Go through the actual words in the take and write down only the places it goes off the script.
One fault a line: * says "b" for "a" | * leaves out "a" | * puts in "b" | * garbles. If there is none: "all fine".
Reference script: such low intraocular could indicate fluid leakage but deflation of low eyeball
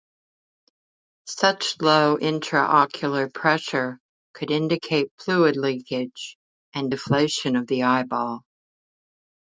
* puts in "pressure"
* says "and" for "but"
* says "the" for "low"